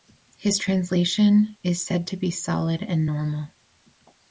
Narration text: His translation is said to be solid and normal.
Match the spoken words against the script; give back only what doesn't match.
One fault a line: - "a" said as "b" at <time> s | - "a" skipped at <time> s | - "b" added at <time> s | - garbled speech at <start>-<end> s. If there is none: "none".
none